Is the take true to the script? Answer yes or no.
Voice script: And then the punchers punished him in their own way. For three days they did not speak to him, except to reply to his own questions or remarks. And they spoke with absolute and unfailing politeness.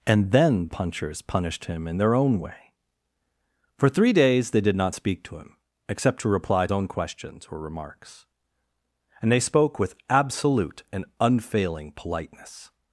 no